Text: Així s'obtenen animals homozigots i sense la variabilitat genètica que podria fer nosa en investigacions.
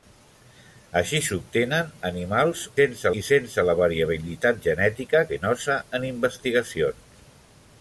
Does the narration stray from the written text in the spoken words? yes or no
yes